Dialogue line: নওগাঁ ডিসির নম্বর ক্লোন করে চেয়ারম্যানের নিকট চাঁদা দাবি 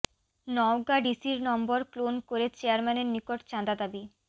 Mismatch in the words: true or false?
false